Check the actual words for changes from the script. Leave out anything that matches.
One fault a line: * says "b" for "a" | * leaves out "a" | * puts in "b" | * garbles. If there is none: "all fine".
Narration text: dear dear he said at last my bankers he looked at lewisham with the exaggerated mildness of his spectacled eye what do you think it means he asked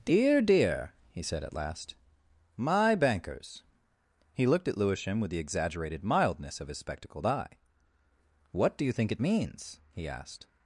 all fine